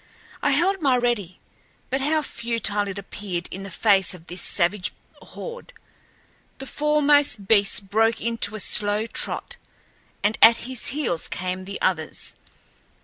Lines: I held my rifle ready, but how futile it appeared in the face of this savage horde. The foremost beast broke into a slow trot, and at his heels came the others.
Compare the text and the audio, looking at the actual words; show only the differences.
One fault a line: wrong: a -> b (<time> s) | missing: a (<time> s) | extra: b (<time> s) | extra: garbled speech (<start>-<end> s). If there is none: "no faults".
missing: rifle (1.0 s)